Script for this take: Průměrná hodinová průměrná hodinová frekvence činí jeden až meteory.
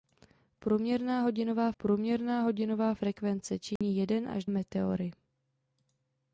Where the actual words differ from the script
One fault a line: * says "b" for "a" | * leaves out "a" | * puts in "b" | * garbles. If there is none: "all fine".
all fine